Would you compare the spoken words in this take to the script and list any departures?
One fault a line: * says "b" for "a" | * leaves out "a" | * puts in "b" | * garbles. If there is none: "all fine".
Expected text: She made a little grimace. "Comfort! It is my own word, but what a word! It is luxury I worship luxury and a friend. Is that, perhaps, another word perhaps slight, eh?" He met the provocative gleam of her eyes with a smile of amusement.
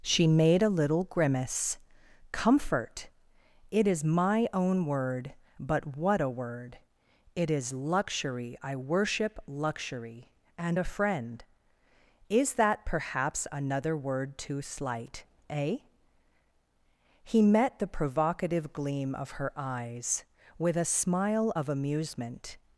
* says "too" for "perhaps"